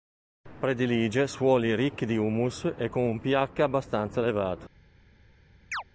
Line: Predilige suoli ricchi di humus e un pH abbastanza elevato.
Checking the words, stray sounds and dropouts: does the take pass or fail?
fail